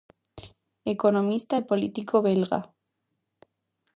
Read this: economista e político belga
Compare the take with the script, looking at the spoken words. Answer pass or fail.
pass